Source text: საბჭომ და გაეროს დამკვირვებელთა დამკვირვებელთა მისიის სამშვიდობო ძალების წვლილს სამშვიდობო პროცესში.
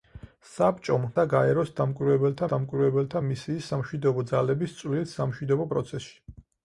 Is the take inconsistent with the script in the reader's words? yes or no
no